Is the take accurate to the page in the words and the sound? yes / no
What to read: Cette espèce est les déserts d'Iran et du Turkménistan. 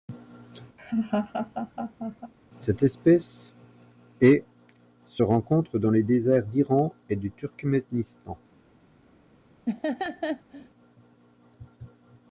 no